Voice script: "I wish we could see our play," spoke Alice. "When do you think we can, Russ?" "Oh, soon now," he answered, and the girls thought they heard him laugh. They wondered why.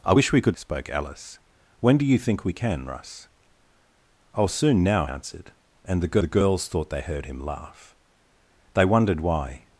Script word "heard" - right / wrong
right